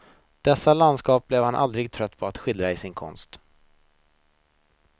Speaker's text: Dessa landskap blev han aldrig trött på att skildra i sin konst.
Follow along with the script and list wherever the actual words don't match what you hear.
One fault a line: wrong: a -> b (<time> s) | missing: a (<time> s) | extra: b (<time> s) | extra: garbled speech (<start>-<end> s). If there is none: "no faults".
no faults